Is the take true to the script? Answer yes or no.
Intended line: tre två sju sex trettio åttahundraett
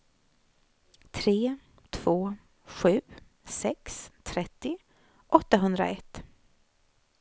yes